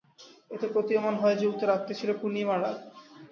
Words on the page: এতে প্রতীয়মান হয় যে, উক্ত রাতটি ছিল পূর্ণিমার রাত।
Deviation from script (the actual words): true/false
false